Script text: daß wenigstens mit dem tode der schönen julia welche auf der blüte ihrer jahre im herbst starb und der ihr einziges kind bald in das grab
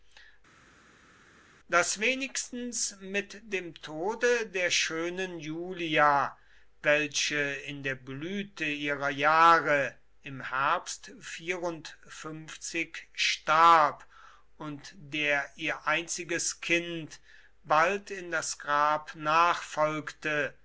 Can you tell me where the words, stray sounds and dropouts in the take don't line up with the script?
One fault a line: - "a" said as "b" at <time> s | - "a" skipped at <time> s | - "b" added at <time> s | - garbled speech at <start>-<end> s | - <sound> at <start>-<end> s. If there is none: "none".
- "auf" said as "in" at 7.6 s